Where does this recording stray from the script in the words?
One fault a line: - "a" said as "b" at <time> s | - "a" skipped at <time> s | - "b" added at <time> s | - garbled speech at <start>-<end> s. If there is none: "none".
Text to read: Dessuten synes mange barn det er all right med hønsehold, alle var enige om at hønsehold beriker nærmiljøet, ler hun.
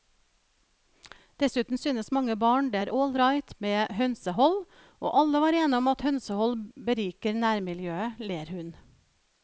- "og" added at 5.0 s